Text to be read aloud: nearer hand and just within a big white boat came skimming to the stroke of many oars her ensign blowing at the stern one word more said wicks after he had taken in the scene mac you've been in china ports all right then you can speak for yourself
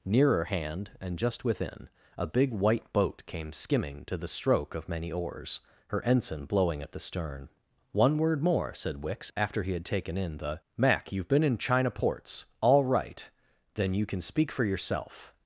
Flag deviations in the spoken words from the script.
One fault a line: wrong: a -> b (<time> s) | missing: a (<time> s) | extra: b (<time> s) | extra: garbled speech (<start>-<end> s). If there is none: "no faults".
missing: scene (10.6 s)